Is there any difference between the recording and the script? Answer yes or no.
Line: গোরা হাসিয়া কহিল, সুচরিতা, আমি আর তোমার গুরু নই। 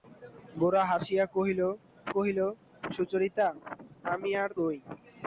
yes